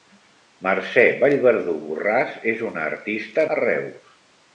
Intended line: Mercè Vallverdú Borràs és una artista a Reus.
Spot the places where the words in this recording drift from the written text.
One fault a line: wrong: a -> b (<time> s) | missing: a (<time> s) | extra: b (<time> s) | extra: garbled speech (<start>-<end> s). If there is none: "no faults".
no faults